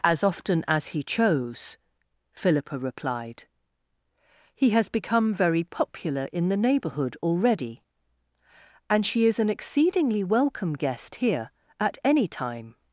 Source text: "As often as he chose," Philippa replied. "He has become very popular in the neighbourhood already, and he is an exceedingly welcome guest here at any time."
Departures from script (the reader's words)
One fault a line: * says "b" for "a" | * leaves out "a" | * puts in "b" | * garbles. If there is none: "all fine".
* says "she" for "he"